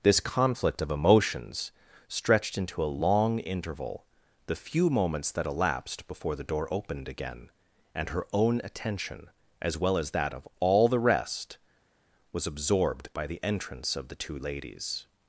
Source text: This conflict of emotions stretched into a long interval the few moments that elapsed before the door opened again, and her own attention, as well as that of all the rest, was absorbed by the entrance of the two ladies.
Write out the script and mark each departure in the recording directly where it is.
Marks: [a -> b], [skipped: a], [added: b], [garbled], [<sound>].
This conflict of emotions stretched into a long interval the few moments that elapsed before the door opened again, and her own attention, as well as that of all the rest, was absorbed by the entrance of the two ladies.